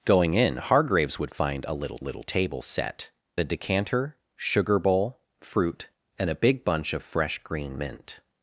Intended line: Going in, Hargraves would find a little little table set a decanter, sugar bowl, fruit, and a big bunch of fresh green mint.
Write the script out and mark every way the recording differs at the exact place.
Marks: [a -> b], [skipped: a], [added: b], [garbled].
Going in, Hargraves would find a little little table set a decanter, sugar bowl, fruit, and a big bunch of fresh green mint.